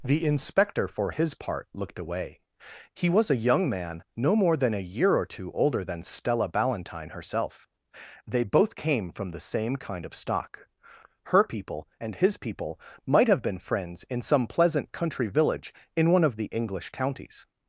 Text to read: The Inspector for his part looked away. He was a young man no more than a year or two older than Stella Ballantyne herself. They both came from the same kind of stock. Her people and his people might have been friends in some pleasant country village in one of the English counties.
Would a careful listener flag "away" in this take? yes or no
no